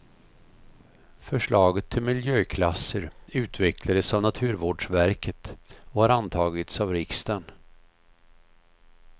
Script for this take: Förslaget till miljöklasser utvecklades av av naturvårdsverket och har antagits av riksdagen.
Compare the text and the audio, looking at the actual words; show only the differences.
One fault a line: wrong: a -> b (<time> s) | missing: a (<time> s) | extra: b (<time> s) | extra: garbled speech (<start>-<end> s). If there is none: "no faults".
missing: av (4.2 s)